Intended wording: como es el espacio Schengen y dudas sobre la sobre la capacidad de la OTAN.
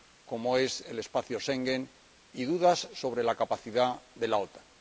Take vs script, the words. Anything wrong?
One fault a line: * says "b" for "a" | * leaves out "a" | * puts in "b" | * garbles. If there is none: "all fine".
* leaves out "sobre la"